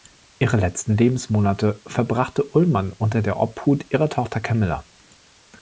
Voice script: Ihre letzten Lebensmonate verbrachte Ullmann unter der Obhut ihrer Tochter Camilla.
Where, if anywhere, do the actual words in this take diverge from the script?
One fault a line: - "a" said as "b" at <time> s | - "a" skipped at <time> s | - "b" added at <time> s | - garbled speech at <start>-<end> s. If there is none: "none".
none